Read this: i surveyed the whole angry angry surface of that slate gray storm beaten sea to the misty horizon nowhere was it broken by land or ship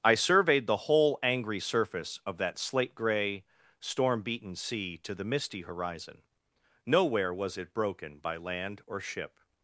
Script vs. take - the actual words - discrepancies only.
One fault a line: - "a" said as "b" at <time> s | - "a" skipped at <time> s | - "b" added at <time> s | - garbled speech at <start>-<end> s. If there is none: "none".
- "angry" skipped at 1.6 s